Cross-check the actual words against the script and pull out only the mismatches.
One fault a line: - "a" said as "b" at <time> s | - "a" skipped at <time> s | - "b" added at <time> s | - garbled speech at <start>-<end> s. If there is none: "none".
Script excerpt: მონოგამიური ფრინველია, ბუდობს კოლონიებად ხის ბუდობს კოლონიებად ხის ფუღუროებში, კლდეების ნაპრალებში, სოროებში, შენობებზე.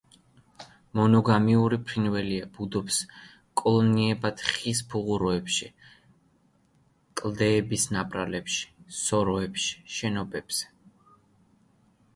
- "ბუდობს კოლონიებად ხის" skipped at 4.8 s